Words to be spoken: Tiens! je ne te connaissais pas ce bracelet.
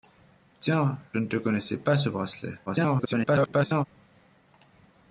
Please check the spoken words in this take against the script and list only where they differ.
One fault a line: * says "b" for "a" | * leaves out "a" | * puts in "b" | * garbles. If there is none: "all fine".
* leaves out "je"
* garbles